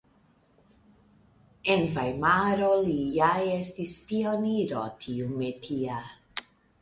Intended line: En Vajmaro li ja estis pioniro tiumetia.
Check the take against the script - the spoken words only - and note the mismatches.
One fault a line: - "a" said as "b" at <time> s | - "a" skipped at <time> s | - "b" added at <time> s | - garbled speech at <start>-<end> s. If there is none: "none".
none